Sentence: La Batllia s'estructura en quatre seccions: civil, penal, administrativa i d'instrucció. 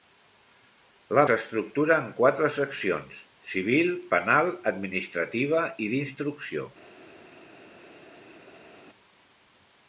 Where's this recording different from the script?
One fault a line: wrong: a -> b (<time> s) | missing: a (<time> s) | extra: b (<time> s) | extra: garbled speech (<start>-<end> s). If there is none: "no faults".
missing: Batllia (1.2 s)